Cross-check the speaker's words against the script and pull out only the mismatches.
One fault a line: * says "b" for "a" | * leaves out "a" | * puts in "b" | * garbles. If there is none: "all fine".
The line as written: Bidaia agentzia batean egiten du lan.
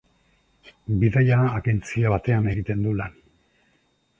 all fine